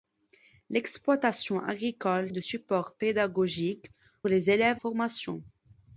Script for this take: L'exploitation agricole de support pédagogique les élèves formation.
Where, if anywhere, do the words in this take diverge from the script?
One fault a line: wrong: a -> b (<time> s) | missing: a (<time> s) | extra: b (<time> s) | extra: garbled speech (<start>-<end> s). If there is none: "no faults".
no faults